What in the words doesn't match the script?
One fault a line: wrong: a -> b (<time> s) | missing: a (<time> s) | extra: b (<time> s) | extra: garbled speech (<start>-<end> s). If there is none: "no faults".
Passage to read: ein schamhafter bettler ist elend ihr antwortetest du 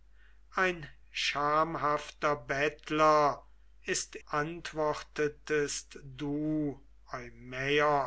missing: elend ihr (4.2 s)